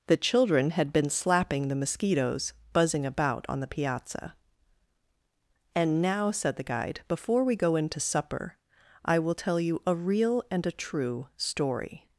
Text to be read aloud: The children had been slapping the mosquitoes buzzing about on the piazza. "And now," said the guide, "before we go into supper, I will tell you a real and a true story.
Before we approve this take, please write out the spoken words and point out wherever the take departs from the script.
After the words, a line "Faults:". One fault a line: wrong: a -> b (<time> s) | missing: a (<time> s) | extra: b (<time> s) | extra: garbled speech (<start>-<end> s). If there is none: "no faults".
The children had been slapping the mosquitoes buzzing about on the piazza. "And now," said the guide, "before we go into supper, I will tell you a real and a true story.
Faults:
no faults